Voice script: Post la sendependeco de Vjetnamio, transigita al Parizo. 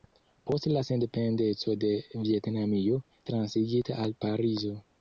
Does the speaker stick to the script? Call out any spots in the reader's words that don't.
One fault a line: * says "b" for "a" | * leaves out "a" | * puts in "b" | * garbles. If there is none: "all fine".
all fine